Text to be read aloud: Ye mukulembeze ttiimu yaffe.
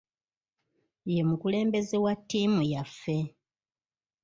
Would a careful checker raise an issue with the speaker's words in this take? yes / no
yes